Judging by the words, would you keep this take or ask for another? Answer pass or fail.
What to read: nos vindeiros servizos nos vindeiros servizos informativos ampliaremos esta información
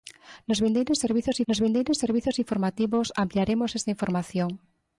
pass